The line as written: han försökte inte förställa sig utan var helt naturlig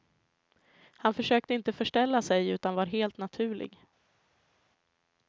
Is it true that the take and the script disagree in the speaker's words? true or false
false